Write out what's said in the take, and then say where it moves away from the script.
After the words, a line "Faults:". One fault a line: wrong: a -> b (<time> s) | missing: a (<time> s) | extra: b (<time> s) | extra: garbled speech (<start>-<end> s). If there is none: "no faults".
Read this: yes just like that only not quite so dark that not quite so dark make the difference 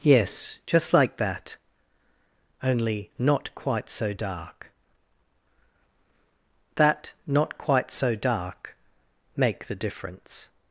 yes just like that only not quite so dark that not quite so dark make the difference
Faults:
no faults